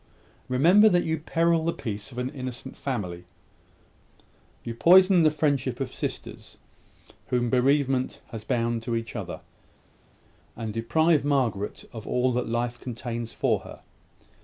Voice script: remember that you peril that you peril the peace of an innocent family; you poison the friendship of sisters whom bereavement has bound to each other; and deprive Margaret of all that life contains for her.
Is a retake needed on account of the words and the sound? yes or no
yes